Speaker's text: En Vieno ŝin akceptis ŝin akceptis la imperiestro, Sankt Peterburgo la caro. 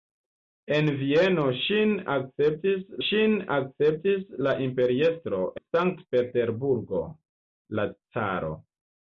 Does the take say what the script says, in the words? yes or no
yes